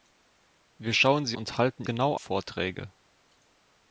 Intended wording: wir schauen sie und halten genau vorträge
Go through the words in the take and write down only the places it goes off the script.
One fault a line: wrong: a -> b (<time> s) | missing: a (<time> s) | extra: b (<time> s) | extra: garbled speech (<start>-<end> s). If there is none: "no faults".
no faults